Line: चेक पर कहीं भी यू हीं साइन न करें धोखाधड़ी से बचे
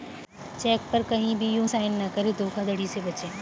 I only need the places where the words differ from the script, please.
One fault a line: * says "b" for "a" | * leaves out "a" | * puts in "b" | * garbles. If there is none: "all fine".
* leaves out "हीं"